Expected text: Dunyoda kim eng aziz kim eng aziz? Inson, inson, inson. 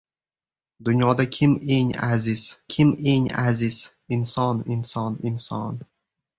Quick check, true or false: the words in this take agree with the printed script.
true